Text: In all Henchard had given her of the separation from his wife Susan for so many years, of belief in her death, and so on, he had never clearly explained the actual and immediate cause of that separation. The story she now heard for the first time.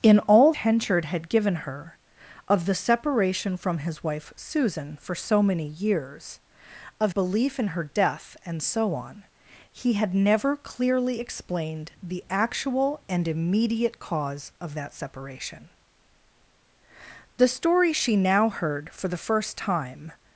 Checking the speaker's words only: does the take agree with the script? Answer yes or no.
yes